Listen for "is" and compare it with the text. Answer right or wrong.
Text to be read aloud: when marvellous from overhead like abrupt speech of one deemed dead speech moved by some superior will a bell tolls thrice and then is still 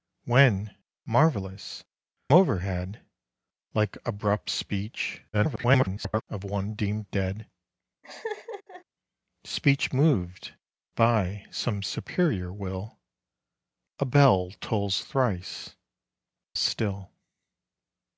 wrong